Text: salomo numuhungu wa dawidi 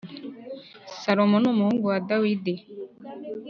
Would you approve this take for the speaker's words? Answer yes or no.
yes